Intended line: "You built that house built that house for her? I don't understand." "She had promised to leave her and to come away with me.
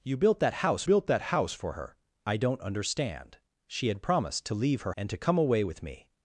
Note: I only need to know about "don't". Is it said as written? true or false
true